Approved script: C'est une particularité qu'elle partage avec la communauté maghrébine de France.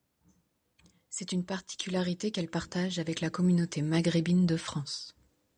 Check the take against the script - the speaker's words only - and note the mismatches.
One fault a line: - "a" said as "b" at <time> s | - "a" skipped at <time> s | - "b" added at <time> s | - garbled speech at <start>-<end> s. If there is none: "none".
none